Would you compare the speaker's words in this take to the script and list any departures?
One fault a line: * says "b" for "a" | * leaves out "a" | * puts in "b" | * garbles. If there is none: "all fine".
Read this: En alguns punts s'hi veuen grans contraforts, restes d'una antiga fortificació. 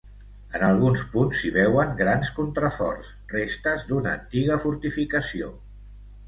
all fine